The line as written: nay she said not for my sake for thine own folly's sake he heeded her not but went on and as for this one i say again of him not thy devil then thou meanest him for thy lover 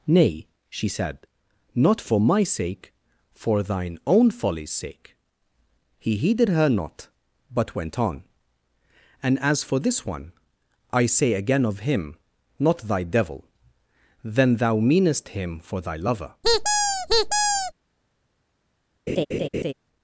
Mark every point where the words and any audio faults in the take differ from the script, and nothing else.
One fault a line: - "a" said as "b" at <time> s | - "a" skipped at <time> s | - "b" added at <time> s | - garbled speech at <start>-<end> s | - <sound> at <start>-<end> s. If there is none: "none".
- squeak at 16.4-17.7 s
- laugh at 19.1-19.7 s